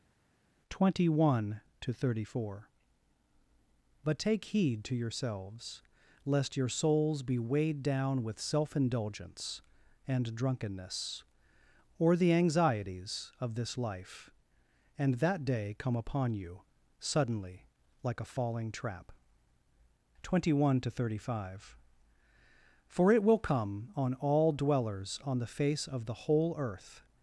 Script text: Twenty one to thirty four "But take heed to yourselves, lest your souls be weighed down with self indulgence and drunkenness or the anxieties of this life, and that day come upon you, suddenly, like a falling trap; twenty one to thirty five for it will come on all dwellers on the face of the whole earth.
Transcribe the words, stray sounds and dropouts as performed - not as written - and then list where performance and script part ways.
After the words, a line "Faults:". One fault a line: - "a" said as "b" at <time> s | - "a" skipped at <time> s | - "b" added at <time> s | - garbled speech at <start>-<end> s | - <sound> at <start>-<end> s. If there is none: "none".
Twenty one to thirty four "But take heed to yourselves, lest your souls be weighed down with self indulgence and drunkenness or the anxieties of this life, and that day come upon you, suddenly, like a falling trap; twenty one to thirty five for it will come on all dwellers on the face of the whole earth.
Faults:
none